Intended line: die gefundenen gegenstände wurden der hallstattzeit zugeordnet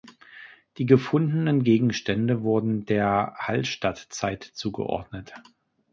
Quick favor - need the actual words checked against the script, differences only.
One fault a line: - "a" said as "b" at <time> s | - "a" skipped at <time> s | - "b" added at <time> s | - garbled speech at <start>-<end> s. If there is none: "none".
none